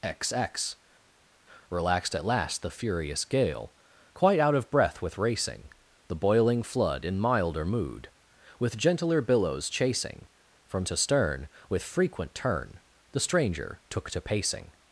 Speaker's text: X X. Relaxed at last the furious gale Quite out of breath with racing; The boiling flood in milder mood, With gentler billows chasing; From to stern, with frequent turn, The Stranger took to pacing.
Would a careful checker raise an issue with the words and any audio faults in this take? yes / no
no